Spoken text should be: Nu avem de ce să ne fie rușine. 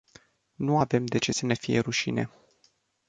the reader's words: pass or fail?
pass